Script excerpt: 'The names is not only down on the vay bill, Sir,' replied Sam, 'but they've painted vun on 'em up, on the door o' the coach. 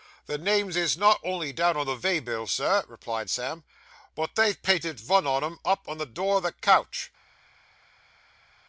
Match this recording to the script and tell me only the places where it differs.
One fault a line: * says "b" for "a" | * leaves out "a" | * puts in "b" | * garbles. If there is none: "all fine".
all fine